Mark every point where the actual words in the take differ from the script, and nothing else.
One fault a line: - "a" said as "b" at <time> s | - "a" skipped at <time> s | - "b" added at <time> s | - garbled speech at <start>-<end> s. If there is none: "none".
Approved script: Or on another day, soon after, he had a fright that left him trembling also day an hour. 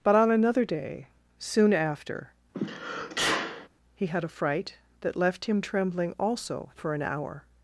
- "Or" said as "But" at 0.0 s
- "day" said as "for" at 6.8 s